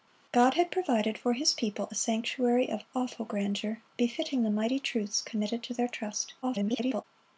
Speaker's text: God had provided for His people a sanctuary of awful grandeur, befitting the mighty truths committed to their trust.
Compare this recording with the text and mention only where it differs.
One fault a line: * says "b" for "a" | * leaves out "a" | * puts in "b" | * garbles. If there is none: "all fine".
* garbles